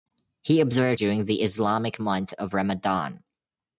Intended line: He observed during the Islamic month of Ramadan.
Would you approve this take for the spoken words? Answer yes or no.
yes